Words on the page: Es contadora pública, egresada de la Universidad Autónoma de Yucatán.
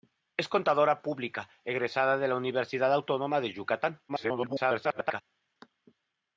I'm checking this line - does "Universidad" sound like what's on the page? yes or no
yes